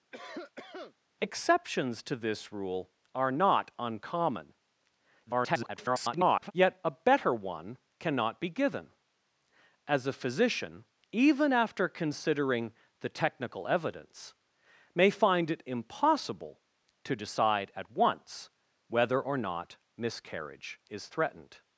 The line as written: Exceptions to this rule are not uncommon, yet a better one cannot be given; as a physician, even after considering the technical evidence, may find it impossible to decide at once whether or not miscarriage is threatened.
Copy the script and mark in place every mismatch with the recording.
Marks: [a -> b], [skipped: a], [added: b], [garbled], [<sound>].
[cough] Exceptions to this rule are not uncommon, [garbled] yet a better one cannot be given; as a physician, even after considering the technical evidence, may find it impossible to decide at once whether or not miscarriage is threatened.